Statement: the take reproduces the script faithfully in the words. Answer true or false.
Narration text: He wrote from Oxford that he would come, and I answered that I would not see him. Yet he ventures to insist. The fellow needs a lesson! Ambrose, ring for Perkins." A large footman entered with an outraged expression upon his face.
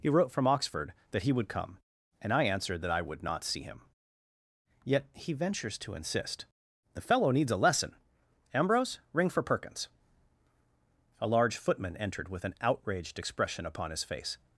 true